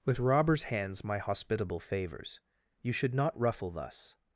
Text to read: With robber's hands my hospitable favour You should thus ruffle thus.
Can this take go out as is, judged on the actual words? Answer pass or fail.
fail